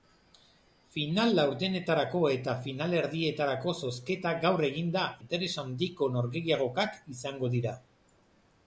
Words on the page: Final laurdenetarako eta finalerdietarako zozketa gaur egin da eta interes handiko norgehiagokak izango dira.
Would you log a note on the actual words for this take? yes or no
yes